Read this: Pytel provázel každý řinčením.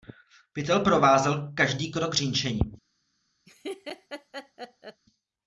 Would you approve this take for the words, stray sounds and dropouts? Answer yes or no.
no